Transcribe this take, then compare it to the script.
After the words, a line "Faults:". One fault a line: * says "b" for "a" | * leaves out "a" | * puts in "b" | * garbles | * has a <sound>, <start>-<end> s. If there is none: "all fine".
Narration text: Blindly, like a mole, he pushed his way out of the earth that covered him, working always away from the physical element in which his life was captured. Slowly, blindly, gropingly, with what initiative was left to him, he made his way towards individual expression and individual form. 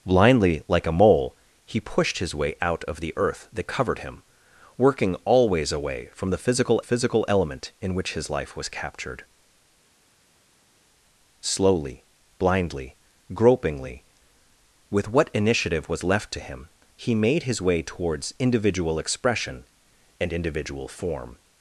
Blindly, like a mole, he pushed his way out of the earth that covered him, working always away from the physical physical element in which his life was captured. Slowly, blindly, gropingly, with what initiative was left to him, he made his way towards individual expression and individual form.
Faults:
* puts in "physical"